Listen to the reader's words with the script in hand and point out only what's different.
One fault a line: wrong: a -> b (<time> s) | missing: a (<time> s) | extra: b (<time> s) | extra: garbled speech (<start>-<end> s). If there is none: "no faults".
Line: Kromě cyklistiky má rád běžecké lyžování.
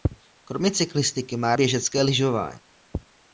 missing: rád (1.6 s)